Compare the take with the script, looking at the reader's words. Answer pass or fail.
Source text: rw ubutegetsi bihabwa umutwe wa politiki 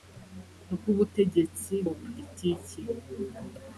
fail